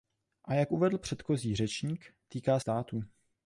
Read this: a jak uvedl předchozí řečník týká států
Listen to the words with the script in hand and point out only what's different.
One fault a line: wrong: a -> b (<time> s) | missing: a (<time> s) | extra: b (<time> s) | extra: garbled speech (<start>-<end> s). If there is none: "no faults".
no faults